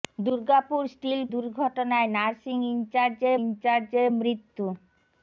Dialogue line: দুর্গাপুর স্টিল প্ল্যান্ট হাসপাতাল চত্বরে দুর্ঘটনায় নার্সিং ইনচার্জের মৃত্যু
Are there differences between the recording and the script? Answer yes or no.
yes